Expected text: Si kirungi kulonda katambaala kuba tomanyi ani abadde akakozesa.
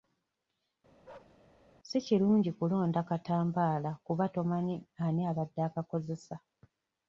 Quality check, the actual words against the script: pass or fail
pass